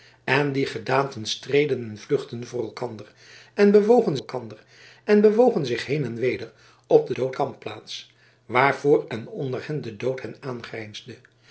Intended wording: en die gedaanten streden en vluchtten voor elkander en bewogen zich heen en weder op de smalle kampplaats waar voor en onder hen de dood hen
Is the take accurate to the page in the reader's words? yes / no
no